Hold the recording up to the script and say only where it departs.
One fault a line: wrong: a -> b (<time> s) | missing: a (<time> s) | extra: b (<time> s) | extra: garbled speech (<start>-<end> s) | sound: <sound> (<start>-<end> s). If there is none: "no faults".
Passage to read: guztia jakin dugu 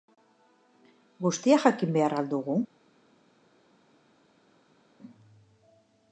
extra: behar al (2.0 s)